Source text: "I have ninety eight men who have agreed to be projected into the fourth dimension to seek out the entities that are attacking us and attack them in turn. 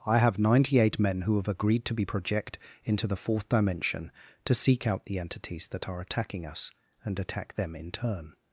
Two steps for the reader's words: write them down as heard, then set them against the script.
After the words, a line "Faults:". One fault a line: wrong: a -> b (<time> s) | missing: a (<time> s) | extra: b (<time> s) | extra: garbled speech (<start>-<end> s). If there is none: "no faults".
"I have ninety eight men who have agreed to be project into the fourth dimension to seek out the entities that are attacking us and attack them in turn.
Faults:
wrong: projected -> project (2.0 s)